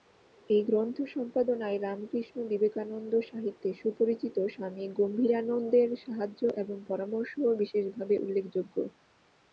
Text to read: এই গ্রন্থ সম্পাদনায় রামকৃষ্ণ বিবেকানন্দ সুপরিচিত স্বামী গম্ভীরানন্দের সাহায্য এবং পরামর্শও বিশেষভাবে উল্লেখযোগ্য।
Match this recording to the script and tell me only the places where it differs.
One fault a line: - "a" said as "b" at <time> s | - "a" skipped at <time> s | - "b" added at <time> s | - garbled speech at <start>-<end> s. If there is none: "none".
- "সাহিত্যে" added at 3.3 s